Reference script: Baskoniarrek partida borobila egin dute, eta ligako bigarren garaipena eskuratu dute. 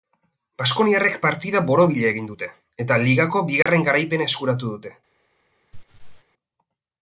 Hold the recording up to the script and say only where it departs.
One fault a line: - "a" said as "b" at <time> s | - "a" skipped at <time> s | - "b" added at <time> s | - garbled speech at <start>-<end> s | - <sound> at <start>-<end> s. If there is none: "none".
- dropout at 3.6-3.7 s
- laugh at 5.7-6.2 s